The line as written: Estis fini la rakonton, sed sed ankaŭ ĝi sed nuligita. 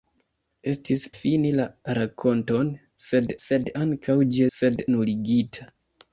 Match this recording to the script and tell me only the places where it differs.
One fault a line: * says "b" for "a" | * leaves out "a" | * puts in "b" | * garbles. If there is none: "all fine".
all fine